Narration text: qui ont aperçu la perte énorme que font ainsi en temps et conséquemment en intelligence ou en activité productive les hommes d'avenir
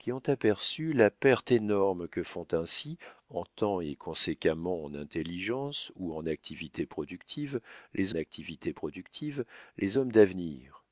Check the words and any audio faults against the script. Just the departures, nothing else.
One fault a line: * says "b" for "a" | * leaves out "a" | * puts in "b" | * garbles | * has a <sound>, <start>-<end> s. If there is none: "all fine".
* puts in "activité productive les"